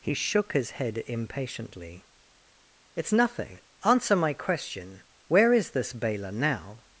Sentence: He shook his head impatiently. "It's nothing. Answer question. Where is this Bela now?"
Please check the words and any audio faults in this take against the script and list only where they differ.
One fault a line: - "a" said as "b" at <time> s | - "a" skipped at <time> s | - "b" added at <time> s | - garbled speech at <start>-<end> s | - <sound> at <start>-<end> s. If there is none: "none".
- "my" added at 4.2 s